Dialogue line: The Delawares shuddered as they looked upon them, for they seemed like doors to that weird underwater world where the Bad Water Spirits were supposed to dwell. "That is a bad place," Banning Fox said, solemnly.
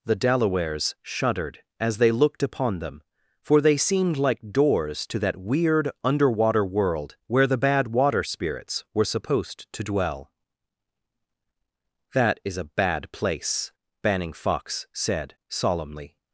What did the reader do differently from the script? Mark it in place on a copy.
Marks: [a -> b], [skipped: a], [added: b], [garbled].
The Delawares shuddered as they looked upon them, for they seemed like doors to that weird underwater world where the Bad Water Spirits were supposed to dwell. "That is a bad place," Banning Fox said, solemnly.